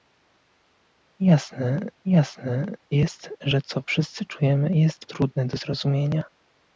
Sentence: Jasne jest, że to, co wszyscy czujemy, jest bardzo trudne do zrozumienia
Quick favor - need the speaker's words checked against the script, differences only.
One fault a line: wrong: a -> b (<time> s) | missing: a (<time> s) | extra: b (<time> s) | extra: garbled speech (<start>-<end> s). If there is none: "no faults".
extra: jasne (2.0 s)
missing: to (3.6 s)
missing: bardzo (5.1 s)